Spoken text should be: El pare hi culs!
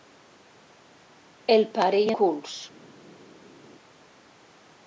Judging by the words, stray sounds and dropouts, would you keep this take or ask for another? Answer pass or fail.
pass